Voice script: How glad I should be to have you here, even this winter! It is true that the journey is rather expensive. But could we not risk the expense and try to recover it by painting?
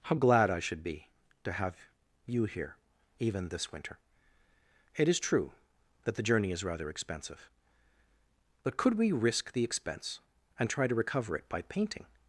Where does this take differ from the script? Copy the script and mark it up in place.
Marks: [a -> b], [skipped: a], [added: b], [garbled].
How glad I should be to have you here, even this winter! It is true that the journey is rather expensive. But could we [skipped: not] risk the expense and try to recover it by painting?